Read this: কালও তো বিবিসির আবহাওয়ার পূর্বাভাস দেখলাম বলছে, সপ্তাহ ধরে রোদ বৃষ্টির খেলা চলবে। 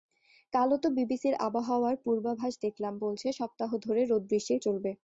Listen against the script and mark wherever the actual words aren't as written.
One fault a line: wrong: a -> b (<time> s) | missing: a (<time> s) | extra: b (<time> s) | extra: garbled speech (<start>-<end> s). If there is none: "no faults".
missing: খেলা (4.6 s)